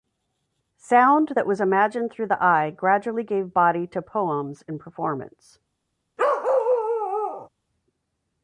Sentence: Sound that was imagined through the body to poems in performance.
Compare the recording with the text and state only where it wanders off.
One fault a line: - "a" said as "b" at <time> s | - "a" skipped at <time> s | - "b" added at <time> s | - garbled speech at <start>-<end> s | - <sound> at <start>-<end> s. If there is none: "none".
- "eye gradually gave" added at 2.4 s
- bark at 6.2-7.5 s